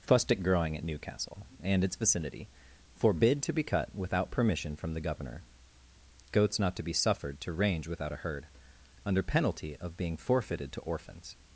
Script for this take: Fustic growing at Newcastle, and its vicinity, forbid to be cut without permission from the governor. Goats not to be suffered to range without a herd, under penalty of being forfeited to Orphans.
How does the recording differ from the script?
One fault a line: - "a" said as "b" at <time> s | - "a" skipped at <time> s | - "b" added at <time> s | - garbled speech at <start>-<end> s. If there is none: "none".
none